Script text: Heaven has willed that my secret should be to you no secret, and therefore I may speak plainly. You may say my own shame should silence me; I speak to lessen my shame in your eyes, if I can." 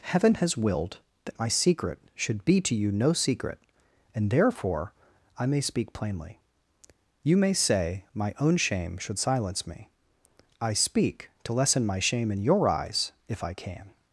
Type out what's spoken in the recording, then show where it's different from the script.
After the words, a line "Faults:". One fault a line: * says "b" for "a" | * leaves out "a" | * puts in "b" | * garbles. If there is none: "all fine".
Heaven has willed that my secret should be to you no secret, and therefore I may speak plainly. You may say my own shame should silence me; I speak to lessen my shame in your eyes, if I can."
Faults:
all fine